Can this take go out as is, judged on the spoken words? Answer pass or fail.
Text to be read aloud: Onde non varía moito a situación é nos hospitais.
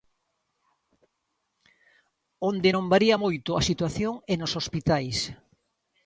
pass